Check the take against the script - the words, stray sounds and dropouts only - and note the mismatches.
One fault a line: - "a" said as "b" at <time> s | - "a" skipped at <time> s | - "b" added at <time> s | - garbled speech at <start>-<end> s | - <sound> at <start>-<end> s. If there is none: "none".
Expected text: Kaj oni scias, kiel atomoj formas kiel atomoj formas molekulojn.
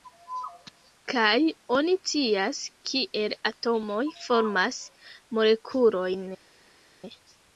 - "kiel atomoj formas" skipped at 4.8 s